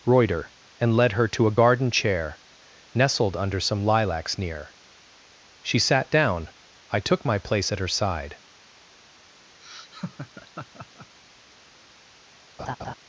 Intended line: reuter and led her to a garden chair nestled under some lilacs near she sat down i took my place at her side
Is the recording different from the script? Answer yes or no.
no